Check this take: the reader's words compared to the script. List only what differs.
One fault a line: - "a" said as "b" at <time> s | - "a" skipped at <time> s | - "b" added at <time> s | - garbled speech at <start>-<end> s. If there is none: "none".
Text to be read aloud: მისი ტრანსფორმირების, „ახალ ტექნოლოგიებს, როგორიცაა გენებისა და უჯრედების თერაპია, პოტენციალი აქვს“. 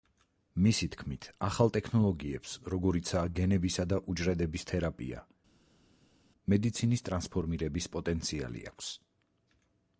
- "ტრანსფორმირების" said as "თქმით" at 0.9 s
- "მედიცინის ტრანსფორმირების" added at 6.6 s